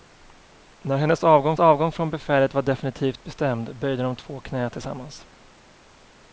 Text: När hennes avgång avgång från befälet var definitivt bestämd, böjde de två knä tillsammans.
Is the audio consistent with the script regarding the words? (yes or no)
yes